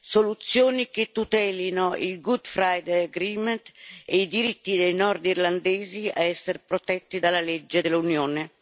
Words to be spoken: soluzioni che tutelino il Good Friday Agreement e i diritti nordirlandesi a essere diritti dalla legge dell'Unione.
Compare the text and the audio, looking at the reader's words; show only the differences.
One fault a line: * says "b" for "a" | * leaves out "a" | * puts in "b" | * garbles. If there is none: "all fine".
* puts in "dei"
* says "protetti" for "diritti"